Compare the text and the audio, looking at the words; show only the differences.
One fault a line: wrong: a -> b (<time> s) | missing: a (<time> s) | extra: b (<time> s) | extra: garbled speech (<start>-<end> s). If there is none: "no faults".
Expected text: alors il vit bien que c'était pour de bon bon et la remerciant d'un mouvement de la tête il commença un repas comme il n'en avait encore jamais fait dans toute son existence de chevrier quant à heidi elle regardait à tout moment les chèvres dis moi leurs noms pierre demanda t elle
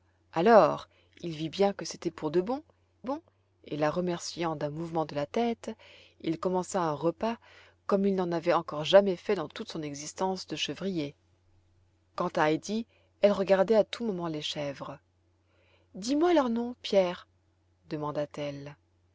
no faults